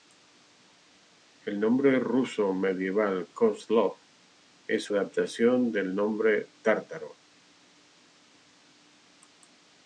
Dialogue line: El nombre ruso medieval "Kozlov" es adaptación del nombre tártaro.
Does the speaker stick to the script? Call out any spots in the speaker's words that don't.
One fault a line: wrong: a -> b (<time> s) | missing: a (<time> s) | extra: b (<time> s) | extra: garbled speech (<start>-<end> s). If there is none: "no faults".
no faults